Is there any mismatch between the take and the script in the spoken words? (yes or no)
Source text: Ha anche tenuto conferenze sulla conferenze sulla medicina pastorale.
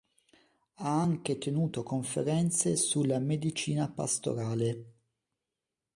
yes